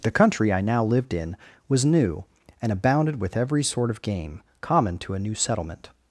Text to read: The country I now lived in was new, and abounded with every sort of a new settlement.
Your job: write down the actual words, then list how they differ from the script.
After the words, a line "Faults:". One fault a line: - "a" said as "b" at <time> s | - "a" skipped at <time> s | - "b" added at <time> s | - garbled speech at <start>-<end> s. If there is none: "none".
The country I now lived in was new, and abounded with every sort of game common to a new settlement.
Faults:
- "game common to" added at 4.0 s